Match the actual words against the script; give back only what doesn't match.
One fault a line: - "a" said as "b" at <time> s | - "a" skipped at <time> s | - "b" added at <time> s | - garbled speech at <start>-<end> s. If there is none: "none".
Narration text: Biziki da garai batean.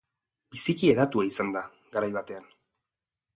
- "hedatua izan" added at 0.9 s